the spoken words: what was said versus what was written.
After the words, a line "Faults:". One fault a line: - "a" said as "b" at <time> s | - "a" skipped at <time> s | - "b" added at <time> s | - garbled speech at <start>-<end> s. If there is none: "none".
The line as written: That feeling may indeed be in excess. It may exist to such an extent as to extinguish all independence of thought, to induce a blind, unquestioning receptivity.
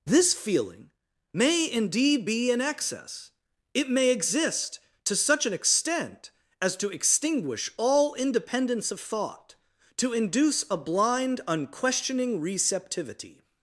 This feeling may indeed be in excess. It may exist to such an extent as to extinguish all independence of thought, to induce a blind, unquestioning receptivity.
Faults:
- "That" said as "This" at 0.1 s